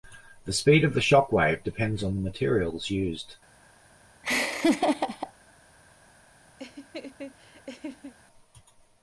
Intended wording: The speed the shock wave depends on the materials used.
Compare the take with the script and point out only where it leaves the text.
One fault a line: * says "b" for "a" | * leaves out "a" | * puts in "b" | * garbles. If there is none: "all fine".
* puts in "of"